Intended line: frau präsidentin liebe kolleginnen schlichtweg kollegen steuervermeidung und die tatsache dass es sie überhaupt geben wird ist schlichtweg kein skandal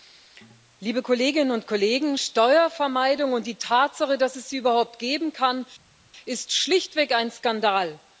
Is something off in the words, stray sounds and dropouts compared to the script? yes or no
yes